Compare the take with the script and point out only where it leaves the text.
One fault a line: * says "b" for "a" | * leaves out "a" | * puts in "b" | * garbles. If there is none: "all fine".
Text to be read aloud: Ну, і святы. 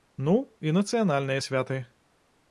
* puts in "нацыянальныя"